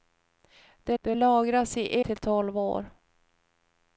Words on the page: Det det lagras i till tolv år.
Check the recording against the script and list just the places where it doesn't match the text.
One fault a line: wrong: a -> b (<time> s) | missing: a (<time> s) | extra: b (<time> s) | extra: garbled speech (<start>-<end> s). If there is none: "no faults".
no faults